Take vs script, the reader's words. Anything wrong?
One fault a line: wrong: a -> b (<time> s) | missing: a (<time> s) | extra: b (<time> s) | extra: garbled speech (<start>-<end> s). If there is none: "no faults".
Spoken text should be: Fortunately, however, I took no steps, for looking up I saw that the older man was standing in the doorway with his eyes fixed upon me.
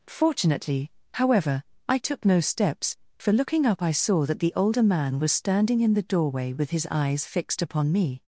no faults